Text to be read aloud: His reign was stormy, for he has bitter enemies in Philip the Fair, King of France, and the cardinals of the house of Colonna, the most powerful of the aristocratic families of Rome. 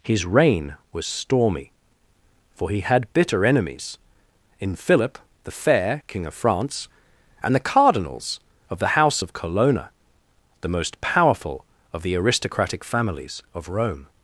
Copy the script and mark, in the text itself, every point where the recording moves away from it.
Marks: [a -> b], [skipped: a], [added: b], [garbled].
His reign was stormy, for he [has -> had] bitter enemies in Philip the Fair, King of France, and the cardinals of the house of Colonna, the most powerful of the aristocratic families of Rome.